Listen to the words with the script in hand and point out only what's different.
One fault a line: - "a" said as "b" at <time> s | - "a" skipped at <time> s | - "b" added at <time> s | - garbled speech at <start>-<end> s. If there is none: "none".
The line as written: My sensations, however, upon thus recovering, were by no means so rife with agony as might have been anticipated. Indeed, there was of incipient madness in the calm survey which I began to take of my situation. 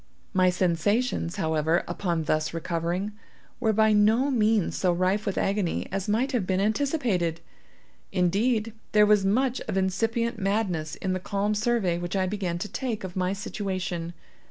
- "much" added at 9.2 s